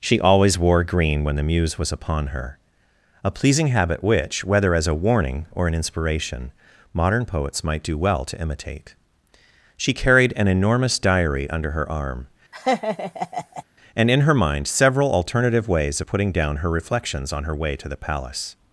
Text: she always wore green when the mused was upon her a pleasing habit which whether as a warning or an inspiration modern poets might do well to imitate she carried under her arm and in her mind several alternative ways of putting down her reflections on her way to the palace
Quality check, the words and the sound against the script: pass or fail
fail